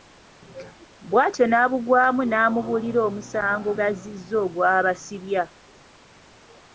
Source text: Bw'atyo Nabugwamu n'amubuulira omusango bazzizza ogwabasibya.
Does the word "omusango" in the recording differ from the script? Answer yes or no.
no